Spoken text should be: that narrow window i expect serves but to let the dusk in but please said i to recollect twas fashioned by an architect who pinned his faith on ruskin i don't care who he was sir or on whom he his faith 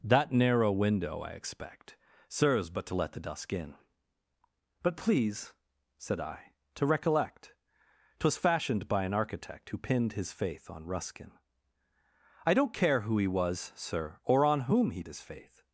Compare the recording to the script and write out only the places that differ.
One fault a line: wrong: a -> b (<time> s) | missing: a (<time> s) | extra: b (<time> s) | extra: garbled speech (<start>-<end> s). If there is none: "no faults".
no faults